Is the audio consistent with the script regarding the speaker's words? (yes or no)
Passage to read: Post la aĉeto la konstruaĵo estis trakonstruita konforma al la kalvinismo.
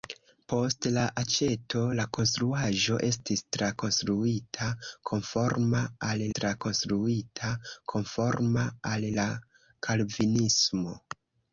no